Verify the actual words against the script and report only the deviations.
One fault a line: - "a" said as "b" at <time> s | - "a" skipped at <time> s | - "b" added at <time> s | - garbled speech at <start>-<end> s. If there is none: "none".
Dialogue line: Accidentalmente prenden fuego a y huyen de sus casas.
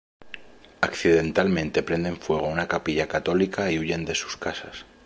- "una capilla católica" added at 2.5 s